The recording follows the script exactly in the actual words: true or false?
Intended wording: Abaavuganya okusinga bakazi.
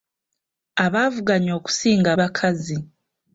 true